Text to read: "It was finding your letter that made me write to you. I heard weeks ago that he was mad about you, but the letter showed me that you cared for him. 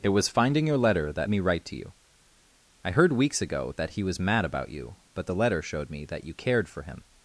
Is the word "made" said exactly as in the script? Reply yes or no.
no